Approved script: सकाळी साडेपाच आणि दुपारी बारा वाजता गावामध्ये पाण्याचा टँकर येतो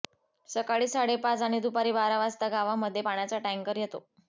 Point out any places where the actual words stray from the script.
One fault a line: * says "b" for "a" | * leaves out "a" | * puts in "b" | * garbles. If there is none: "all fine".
all fine